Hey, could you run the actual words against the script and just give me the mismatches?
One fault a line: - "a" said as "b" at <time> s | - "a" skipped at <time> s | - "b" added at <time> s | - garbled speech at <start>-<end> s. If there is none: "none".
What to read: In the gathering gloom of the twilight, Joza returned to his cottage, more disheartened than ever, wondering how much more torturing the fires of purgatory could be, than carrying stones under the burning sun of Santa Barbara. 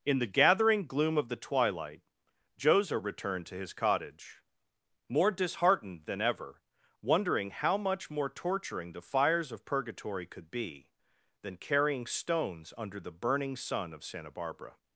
none